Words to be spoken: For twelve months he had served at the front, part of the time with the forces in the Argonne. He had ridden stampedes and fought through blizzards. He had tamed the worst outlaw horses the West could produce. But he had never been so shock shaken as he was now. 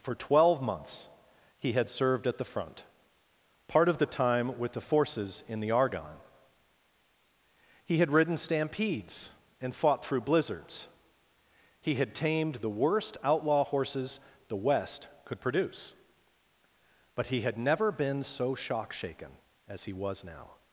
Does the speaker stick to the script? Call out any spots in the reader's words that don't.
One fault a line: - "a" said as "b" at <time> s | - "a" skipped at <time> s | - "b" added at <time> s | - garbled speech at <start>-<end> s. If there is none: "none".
none